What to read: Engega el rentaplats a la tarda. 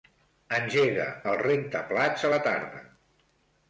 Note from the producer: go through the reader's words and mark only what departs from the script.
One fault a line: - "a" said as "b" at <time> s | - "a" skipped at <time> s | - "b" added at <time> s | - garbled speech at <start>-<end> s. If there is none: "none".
none